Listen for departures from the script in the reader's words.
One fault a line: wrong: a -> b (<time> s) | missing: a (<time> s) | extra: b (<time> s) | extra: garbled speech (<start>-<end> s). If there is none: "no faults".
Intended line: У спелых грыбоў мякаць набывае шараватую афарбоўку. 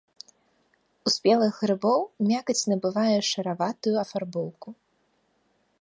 no faults